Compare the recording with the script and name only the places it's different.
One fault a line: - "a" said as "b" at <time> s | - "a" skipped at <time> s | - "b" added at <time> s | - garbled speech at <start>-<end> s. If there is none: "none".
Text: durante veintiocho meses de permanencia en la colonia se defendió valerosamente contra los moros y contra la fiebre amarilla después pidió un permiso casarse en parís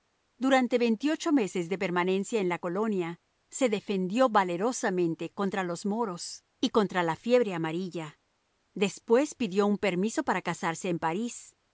- "para" added at 10.2 s